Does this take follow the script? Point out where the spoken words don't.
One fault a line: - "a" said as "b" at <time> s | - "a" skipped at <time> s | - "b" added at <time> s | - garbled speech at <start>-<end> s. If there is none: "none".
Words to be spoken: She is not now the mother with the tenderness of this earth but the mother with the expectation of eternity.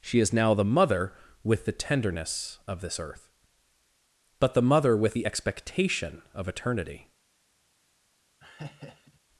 - "not" skipped at 0.3 s